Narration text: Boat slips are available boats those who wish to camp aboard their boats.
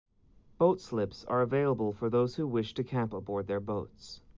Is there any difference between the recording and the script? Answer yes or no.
yes